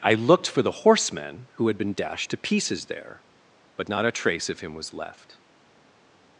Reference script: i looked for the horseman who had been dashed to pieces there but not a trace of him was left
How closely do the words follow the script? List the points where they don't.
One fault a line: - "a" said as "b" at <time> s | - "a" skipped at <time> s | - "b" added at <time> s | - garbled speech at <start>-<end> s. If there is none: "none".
none